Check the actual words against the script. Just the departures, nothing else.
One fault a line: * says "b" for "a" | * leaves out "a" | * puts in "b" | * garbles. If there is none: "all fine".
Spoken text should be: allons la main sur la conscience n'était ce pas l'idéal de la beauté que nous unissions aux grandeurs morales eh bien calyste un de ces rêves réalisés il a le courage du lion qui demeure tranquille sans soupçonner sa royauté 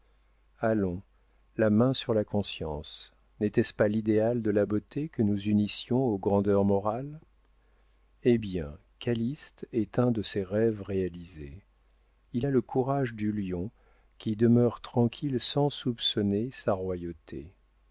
* puts in "est"